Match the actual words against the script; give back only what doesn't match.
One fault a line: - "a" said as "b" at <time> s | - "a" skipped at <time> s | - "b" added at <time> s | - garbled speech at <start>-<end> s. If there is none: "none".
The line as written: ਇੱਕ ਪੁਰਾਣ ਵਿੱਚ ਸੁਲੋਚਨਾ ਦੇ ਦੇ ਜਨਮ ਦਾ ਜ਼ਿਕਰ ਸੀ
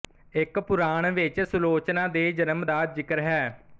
- "ਦੇ" skipped at 2.3 s
- "ਸੀ" said as "ਹੈ" at 3.2 s